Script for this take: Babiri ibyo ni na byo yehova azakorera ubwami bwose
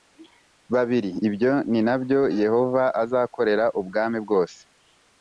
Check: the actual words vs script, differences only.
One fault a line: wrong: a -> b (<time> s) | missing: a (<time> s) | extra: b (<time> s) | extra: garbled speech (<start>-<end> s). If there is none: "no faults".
no faults